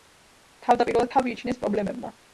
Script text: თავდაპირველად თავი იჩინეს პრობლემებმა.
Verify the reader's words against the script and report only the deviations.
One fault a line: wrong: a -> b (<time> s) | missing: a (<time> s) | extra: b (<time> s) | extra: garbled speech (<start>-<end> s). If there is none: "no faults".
no faults